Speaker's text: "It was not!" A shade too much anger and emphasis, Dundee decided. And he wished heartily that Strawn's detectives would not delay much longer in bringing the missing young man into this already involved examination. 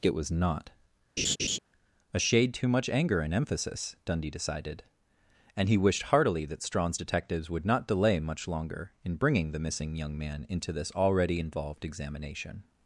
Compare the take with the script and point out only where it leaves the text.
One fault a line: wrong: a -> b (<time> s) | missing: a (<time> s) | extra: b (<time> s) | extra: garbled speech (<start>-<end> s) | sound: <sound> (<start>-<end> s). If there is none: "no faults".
sound: laugh (1.2-1.6 s)